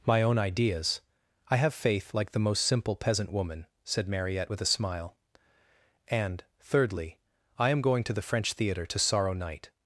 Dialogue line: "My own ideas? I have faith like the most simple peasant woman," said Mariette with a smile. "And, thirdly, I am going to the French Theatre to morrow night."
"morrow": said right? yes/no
no